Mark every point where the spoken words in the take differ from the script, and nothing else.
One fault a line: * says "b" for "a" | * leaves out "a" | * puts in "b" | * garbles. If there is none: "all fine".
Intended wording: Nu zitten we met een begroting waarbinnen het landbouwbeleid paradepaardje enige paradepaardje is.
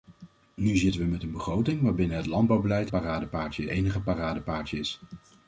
all fine